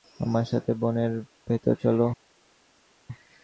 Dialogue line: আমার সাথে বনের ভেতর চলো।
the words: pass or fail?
pass